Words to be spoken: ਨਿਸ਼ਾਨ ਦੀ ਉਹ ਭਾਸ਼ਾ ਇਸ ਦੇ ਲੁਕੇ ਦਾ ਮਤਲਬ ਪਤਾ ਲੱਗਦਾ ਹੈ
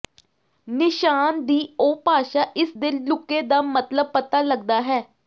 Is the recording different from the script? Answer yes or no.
no